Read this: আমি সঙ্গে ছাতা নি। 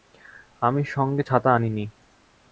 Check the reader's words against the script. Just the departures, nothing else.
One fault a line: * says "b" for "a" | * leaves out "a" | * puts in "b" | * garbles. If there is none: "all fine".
* puts in "আনি"